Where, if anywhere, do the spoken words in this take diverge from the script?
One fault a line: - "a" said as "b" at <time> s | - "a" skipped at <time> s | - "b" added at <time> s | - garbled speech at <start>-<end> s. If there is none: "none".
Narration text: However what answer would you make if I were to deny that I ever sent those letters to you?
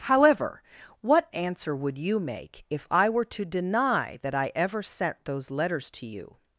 none